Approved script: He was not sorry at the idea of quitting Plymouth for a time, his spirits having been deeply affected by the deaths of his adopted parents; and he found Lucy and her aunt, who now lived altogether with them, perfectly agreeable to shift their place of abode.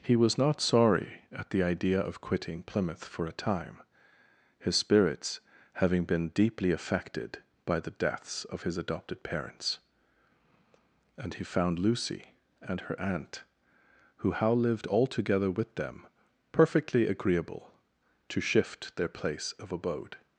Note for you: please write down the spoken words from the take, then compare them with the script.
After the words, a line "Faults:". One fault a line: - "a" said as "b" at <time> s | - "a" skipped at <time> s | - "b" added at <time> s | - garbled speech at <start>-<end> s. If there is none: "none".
He was not sorry at the idea of quitting Plymouth for a time, his spirits having been deeply affected by the deaths of his adopted parents; and he found Lucy and her aunt, who how lived altogether with them, perfectly agreeable to shift their place of abode.
Faults:
- "now" said as "how" at 14.3 s